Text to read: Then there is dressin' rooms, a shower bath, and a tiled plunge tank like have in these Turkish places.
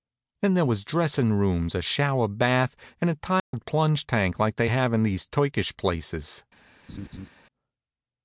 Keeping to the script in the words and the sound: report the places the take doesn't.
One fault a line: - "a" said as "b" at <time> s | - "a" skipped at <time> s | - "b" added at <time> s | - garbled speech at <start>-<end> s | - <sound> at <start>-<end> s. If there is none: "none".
- "is" said as "was" at 0.7 s
- dropout at 3.4-3.5 s
- "they" added at 4.5 s
- laugh at 6.9-7.3 s